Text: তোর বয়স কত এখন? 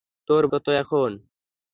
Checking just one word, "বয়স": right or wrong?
wrong